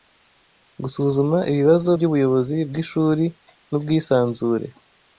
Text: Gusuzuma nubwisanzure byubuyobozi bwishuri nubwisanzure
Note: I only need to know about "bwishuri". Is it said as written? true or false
true